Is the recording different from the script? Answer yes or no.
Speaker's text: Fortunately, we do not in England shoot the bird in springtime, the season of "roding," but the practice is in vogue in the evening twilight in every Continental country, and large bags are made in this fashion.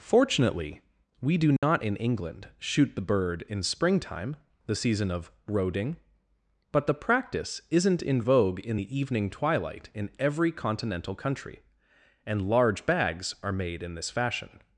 yes